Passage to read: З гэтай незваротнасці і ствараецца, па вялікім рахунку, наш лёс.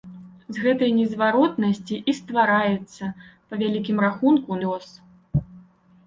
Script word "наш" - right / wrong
wrong